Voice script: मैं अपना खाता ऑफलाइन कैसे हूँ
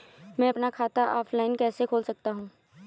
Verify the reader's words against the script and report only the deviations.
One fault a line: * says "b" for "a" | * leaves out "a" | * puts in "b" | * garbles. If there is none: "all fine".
* puts in "खोल सकता"